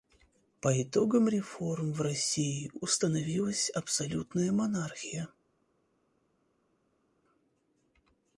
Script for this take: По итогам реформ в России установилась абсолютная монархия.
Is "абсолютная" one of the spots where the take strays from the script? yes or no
no